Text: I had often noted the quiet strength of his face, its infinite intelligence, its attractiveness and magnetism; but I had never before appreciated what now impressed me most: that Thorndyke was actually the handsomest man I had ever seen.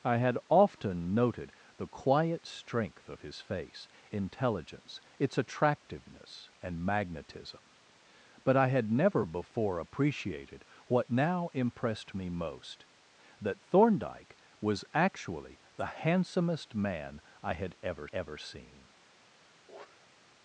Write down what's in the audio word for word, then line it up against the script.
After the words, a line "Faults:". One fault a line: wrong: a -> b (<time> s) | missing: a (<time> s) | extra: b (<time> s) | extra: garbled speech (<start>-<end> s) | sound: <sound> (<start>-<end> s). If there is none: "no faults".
I had often noted the quiet strength of his face, intelligence, its attractiveness and magnetism; but I had never before appreciated what now impressed me most: that Thorndyke was actually the handsomest man I had ever ever seen.
Faults:
missing: its infinite (3.9 s)
extra: ever (18.1 s)
sound: sniff (19.7-20.2 s)